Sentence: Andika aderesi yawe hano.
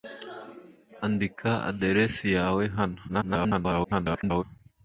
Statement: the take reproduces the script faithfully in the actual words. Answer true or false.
false